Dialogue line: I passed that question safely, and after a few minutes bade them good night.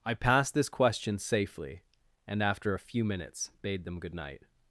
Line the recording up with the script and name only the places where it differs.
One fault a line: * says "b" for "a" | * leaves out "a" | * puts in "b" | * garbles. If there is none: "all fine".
* says "this" for "that"